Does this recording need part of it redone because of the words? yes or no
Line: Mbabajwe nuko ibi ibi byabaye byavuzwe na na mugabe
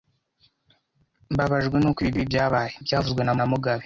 no